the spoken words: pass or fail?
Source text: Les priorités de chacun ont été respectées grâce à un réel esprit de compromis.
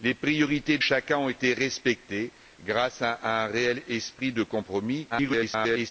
fail